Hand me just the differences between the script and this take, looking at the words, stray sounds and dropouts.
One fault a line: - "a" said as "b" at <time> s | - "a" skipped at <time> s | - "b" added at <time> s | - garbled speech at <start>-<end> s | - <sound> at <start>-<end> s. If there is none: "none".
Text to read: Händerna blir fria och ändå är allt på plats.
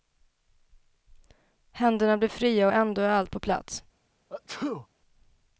- sneeze at 4.3-4.9 s